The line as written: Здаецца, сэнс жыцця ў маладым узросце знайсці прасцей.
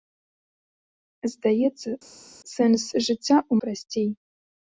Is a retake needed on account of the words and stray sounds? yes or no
yes